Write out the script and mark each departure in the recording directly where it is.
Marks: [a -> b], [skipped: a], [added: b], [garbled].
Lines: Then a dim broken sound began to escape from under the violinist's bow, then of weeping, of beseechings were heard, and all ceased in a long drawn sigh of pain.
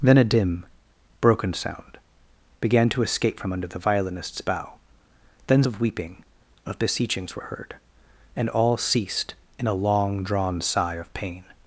Then a dim broken sound began to escape from under the violinist's bow, then of weeping, of beseechings were heard, and all ceased in a long drawn sigh of pain.